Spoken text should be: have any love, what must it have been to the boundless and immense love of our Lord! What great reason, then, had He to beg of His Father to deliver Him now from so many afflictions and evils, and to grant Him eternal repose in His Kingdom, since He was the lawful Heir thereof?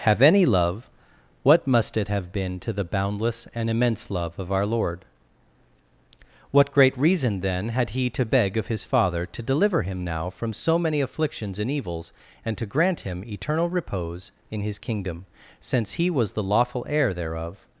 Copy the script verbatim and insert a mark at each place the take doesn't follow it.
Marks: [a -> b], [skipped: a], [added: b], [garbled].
have any love, what must it have been to the boundless and immense love of our Lord! What great reason, then, had He to beg of His Father to deliver Him now from so many afflictions and evils, and to grant Him eternal repose in His Kingdom, since He was the lawful Heir thereof?